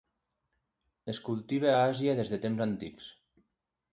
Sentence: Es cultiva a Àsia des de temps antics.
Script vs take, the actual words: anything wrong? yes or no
no